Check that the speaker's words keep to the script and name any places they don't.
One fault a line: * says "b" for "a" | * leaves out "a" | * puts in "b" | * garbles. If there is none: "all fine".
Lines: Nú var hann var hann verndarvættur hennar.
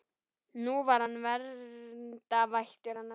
* leaves out "var hann"